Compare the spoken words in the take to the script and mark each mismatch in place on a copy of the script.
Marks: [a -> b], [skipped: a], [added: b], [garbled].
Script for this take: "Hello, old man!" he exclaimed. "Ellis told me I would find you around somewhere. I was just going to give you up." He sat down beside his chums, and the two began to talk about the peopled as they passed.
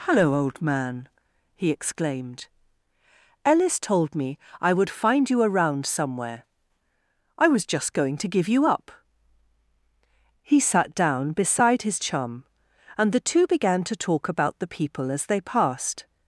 "Hello, old man!" he exclaimed. "Ellis told me I would find you around somewhere. I was just going to give you up." He sat down beside his [chums, -> chum] and the two began to talk about the [peopled -> people] as they passed.